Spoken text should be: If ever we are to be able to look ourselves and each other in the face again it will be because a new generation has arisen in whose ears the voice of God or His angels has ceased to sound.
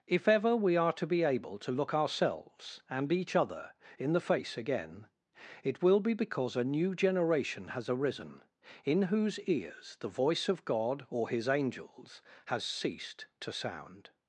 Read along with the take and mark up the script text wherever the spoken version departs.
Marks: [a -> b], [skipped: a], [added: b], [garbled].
If ever we are to be able to look ourselves and each other in the face again it will be because a new generation has arisen in whose ears the voice of God or His angels has ceased to sound.